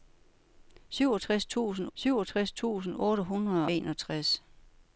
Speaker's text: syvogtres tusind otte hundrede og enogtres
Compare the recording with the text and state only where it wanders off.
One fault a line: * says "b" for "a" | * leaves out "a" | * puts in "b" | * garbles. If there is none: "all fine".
* puts in "syvogtres tusind"
* leaves out "og"